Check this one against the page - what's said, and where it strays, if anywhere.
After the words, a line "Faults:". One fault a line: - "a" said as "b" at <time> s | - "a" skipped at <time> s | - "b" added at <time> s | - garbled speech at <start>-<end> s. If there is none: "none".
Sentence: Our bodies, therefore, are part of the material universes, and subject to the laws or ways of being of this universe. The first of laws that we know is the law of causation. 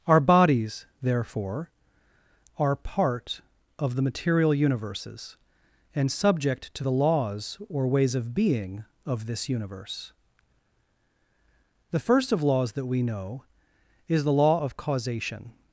Our bodies, therefore, are part of the material universes, and subject to the laws or ways of being of this universe. The first of laws that we know is the law of causation.
Faults:
none